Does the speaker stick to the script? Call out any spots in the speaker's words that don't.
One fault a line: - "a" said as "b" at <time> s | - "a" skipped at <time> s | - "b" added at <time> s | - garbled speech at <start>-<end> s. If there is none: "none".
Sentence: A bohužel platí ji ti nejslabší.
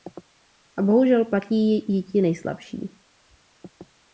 none